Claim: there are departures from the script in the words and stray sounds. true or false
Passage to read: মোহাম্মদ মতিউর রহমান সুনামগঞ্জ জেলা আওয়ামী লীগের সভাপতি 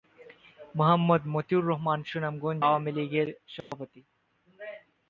true